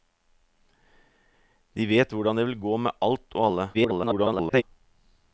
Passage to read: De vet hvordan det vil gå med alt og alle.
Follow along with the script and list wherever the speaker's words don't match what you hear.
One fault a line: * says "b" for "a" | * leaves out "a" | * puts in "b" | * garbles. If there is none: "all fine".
* garbles